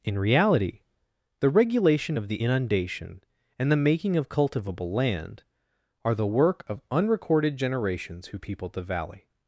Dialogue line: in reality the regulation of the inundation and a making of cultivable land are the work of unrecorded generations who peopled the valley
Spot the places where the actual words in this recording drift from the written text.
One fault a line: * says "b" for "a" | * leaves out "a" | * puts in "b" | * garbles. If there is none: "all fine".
* says "the" for "a"